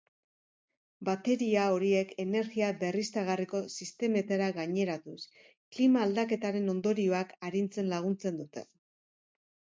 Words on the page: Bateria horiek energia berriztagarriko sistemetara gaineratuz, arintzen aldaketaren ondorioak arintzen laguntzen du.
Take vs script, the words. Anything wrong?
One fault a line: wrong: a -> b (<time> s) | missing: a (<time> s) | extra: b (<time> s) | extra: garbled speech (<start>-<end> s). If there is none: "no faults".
wrong: arintzen -> klima (5.8 s)
wrong: du -> dute (8.4 s)